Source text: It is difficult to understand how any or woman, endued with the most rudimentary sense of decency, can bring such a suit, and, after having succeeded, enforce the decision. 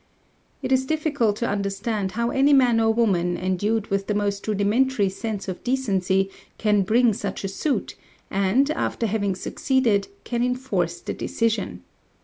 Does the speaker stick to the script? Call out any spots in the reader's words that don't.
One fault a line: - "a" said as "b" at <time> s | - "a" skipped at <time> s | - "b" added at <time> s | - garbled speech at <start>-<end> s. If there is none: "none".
- "man" added at 2.5 s
- "can" added at 10.2 s